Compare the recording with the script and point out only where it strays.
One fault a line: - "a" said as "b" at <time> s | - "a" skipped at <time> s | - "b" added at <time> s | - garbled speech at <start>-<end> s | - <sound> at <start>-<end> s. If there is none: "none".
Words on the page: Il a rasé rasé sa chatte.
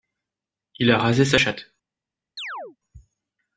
- "rasé" skipped at 1.2 s
- chirp at 2.4-2.8 s